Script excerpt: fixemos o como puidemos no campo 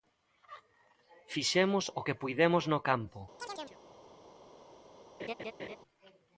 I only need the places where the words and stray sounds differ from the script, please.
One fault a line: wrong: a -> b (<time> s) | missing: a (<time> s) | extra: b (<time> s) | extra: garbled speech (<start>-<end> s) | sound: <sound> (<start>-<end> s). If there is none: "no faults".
wrong: como -> que (2.0 s)
sound: chirp (3.4-3.8 s)
sound: laugh (5.2-5.8 s)